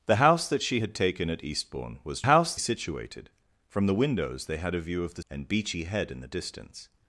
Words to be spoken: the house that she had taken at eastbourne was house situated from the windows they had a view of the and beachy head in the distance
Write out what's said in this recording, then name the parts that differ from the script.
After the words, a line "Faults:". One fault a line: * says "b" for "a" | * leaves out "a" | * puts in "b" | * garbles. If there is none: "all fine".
the house that she had taken at eastbourne was house situated from the windows they had a view of the and beachy head in the distance
Faults:
all fine